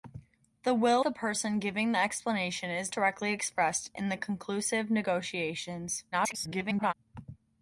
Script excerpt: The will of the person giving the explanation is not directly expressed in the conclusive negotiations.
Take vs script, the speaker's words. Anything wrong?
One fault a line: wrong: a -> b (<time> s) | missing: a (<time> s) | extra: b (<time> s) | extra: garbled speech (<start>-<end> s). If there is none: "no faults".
missing: of (1.1 s)
missing: not (2.9 s)
extra: garbled speech (6.1-6.9 s)